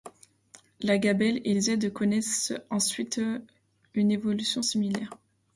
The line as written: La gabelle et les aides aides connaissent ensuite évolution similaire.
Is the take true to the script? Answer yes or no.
no